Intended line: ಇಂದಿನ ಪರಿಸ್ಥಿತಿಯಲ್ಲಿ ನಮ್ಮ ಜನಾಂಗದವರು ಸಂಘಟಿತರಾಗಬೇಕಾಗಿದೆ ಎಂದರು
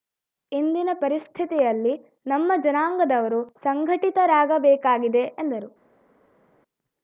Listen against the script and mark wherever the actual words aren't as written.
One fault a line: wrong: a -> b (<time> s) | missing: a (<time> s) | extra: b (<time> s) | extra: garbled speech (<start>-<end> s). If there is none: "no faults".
no faults